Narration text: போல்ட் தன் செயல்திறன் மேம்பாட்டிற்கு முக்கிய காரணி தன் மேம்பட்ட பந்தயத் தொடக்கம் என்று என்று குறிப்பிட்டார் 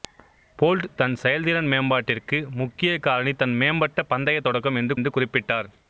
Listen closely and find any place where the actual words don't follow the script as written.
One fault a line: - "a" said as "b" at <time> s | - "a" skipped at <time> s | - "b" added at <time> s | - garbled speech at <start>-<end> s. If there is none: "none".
none